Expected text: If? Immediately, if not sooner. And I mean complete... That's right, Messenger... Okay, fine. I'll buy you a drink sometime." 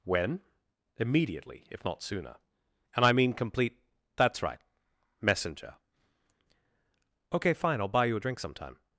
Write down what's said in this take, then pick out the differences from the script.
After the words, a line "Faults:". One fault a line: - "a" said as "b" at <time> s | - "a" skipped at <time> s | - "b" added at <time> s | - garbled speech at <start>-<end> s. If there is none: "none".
When? Immediately, if not sooner. And I mean complete... That's right, Messenger... Okay, fine. I'll buy you a drink sometime."
Faults:
- "If" said as "When" at 0.0 s